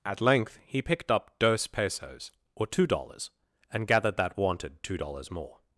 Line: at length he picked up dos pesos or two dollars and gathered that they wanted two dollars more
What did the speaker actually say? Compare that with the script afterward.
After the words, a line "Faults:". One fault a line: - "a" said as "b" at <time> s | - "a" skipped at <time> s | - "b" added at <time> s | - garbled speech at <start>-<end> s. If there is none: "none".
at length he picked up dos pesos or two dollars and gathered that wanted two dollars more
Faults:
- "they" skipped at 4.4 s